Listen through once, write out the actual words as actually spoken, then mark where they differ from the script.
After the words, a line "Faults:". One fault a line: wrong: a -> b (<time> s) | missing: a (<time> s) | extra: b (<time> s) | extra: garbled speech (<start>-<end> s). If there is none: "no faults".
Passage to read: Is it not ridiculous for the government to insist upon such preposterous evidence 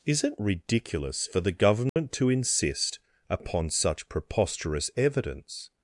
Is it ridiculous for the government to insist upon such preposterous evidence
Faults:
missing: not (0.4 s)